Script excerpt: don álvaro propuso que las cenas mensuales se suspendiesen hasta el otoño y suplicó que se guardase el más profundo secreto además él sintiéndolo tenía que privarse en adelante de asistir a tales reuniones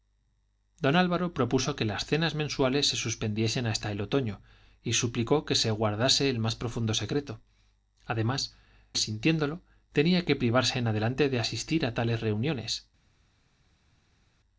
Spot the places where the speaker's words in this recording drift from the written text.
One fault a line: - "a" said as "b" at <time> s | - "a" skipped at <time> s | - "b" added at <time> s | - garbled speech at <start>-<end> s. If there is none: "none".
- "él" skipped at 8.6 s